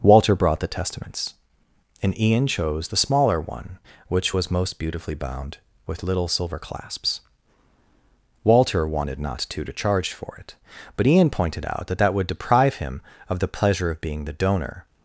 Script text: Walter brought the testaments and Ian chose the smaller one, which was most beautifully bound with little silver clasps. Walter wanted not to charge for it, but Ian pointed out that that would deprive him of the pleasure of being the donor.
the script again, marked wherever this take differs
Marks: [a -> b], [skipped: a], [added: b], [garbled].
Walter brought the testaments and Ian chose the smaller one, which was most beautifully bound with little silver clasps. Walter wanted not to [added: to] charge for it, but Ian pointed out that that would deprive him of the pleasure of being the donor.